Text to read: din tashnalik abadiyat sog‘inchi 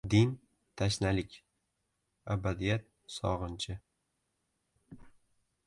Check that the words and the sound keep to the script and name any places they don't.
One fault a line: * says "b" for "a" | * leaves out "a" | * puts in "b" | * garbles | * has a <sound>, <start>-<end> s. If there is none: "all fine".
all fine